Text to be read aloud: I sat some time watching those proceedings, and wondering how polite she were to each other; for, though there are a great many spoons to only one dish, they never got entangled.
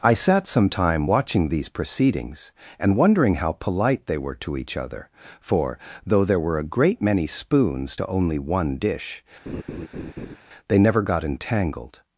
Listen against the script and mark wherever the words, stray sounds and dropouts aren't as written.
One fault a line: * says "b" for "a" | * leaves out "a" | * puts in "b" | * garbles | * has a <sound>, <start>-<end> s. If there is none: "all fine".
* says "these" for "those"
* says "they" for "she"
* says "were" for "are"
* has a laugh, 9.5-10.4 s